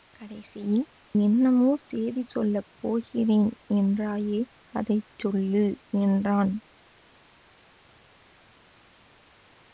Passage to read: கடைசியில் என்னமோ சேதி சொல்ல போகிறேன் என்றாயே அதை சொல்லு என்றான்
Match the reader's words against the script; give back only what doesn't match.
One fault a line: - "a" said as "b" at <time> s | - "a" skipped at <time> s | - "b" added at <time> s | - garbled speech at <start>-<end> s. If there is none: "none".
none